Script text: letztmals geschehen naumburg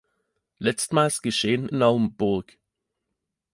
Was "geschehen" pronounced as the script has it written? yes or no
yes